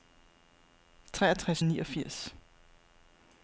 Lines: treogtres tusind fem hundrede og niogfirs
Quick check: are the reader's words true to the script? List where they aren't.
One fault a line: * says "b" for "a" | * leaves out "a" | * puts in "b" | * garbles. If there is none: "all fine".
* leaves out "tusind fem hundrede"